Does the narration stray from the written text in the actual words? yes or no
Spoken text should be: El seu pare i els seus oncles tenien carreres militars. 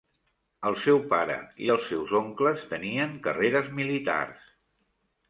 no